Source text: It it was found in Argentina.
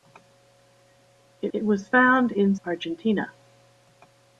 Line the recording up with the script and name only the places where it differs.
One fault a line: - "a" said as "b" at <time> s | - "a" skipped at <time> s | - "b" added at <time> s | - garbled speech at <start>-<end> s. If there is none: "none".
none